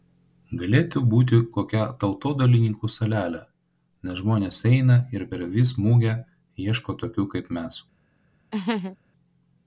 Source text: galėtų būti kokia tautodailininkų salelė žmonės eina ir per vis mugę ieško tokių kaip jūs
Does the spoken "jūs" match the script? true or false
false